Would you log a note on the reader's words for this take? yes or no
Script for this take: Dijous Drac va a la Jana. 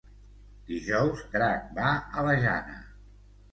no